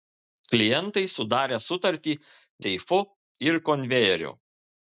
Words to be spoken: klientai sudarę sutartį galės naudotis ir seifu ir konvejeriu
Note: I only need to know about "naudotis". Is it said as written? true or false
false